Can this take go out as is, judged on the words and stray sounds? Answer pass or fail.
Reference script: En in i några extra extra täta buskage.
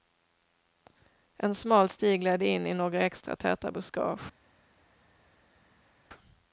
fail